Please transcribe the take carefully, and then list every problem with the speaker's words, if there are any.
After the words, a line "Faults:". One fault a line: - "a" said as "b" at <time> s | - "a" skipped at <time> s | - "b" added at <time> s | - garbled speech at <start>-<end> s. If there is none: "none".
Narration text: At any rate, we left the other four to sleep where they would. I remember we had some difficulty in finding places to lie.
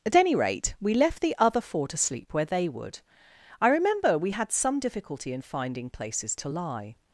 At any rate, we left the other four to sleep where they would. I remember we had some difficulty in finding places to lie.
Faults:
none